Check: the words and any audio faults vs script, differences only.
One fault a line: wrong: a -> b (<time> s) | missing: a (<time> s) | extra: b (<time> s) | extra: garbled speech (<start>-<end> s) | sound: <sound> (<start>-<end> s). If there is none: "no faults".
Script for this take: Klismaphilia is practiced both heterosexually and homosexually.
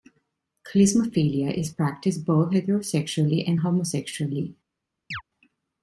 sound: chirp (5.1-5.2 s)